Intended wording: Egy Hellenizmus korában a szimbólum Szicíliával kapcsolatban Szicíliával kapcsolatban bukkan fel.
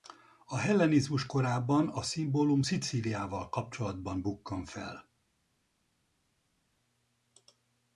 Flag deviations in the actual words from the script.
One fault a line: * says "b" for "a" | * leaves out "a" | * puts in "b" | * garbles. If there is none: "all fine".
* says "A" for "Egy"
* leaves out "Szicíliával kapcsolatban"